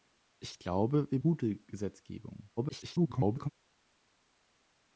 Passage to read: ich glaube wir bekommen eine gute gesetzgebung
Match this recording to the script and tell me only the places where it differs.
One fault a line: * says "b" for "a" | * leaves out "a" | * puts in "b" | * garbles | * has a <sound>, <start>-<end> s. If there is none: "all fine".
* leaves out "bekommen eine"
* garbles